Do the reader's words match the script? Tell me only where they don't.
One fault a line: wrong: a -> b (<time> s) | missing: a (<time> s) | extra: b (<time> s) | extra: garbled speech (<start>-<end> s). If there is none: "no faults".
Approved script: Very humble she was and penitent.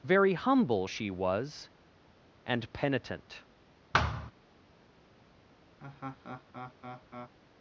no faults